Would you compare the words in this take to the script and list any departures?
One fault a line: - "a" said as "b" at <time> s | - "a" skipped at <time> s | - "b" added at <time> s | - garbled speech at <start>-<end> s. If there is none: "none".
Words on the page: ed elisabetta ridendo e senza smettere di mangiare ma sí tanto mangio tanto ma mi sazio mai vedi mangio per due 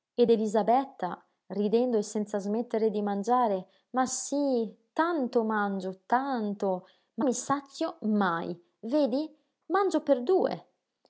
none